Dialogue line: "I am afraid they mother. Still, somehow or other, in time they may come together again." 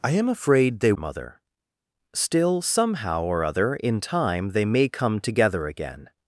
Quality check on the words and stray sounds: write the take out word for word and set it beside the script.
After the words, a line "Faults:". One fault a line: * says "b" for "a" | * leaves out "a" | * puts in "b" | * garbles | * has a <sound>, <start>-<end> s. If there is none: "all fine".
"I am afraid they mother. Still, somehow or other, in time they may come together again."
Faults:
all fine